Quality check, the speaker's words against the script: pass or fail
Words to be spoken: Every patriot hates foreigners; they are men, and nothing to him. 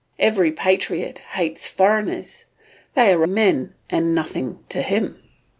pass